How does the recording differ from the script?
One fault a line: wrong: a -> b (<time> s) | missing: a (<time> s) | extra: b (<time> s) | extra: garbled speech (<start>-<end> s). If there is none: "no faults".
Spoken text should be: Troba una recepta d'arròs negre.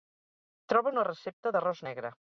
no faults